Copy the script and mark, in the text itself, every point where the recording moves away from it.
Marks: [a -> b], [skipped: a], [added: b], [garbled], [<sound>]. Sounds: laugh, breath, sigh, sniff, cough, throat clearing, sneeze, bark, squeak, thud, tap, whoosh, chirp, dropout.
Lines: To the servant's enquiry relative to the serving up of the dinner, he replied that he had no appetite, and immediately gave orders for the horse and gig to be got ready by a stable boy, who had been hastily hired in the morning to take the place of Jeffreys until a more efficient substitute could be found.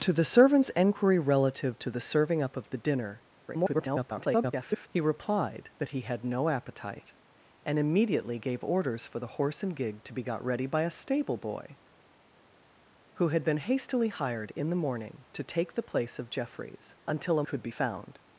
To the servant's enquiry relative to the serving up of the dinner, [garbled] he replied that he had no appetite, and immediately gave orders for the horse and gig to be got ready by a stable boy, who had been hastily hired in the morning to take the place of Jeffreys until a [skipped: more efficient substitute] could be found.